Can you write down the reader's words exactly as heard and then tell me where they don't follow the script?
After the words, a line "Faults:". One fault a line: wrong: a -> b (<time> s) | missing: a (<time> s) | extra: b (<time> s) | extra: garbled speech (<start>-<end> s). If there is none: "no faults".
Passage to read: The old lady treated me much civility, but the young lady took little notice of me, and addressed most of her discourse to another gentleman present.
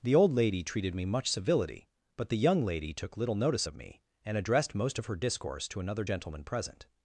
The old lady treated me much civility, but the young lady took little notice of me, and addressed most of her discourse to another gentleman present.
Faults:
no faults